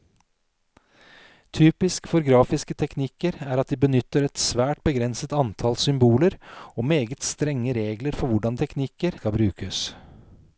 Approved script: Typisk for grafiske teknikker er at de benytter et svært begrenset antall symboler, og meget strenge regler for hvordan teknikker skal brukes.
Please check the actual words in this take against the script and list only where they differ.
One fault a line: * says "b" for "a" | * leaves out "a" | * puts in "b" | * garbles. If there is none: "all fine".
all fine